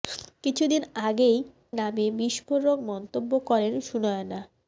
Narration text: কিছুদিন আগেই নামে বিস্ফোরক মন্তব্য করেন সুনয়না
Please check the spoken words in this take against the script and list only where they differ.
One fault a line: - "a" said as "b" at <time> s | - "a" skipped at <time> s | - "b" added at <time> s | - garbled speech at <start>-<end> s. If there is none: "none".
none